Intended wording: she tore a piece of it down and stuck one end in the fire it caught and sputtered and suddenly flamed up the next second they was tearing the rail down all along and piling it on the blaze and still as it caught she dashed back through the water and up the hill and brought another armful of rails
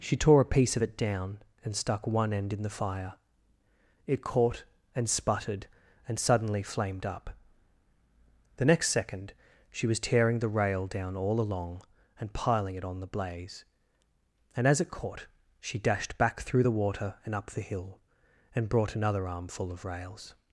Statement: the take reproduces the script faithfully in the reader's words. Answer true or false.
false